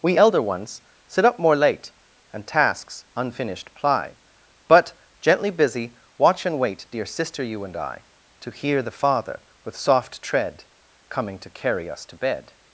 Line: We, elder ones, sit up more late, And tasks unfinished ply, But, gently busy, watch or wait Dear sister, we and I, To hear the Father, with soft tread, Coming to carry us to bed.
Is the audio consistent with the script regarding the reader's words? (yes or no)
no